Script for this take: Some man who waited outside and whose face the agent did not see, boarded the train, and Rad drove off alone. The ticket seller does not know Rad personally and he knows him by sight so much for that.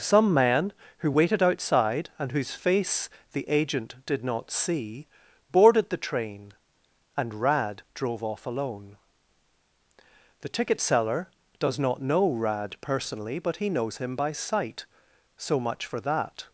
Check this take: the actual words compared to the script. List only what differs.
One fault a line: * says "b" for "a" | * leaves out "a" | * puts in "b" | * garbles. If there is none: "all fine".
* says "but" for "and"